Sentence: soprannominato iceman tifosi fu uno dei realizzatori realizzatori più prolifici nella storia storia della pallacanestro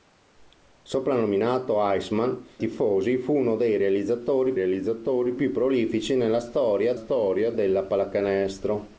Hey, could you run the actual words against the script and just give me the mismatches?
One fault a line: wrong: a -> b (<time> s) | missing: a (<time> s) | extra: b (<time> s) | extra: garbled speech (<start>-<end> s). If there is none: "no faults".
no faults